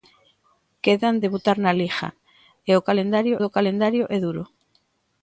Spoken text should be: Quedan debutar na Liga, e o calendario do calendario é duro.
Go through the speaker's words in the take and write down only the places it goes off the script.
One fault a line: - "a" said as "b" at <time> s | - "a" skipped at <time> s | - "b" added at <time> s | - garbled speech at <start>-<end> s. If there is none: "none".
none